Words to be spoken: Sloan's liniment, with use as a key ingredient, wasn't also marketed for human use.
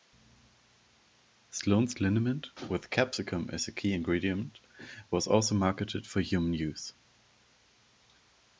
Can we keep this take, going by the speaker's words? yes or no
no